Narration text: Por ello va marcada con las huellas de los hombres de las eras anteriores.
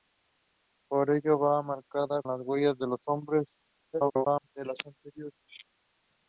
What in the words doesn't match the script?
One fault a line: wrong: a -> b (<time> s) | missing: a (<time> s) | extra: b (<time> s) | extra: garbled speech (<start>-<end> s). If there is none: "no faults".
missing: con (2.2 s)
extra: garbled speech (3.9-4.5 s)
missing: eras (4.8 s)